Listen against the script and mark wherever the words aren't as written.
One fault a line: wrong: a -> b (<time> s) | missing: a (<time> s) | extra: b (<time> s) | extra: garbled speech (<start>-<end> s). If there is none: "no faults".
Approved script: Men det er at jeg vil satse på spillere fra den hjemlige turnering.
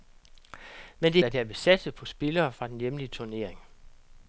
no faults